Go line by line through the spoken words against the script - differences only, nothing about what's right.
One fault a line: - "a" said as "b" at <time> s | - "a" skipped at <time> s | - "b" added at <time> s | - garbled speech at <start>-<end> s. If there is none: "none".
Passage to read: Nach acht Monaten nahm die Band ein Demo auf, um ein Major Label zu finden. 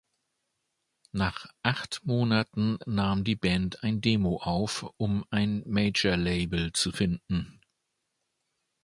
none